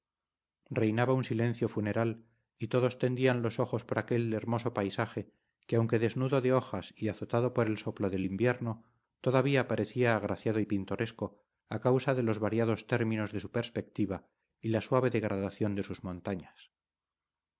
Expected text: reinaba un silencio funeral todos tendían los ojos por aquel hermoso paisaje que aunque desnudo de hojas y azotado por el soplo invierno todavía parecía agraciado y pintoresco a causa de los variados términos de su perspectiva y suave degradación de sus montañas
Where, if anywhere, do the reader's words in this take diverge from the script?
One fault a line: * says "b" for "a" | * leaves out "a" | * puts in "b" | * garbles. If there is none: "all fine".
* puts in "y"
* puts in "del"
* puts in "la"